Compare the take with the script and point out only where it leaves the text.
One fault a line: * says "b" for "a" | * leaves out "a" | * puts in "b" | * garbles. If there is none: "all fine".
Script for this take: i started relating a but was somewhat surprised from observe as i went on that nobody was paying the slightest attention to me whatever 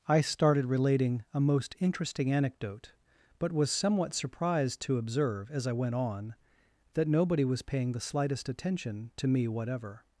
* puts in "most interesting anecdote"
* says "to" for "from"